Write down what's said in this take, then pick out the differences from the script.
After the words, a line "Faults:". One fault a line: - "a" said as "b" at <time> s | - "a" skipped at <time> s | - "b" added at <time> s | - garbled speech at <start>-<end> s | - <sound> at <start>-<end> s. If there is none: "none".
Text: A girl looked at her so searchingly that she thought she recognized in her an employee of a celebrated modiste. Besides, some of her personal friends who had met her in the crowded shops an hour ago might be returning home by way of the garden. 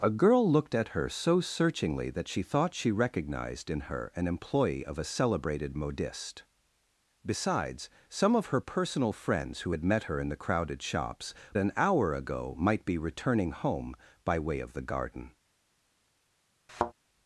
A girl looked at her so searchingly that she thought she recognized in her an employee of a celebrated modiste. Besides, some of her personal friends who had met her in the crowded shops an hour ago might be returning home by way of the garden.
Faults:
- thud at 16.7-16.9 s